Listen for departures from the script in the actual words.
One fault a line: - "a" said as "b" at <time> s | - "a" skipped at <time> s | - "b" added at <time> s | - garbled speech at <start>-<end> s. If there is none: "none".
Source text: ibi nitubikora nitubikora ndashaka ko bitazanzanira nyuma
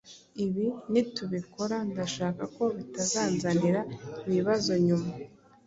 - "nitubikora" skipped at 1.8 s
- "ibibazo" added at 4.3 s